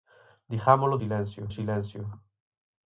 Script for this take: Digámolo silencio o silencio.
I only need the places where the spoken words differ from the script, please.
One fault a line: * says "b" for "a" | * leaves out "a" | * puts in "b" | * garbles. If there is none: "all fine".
all fine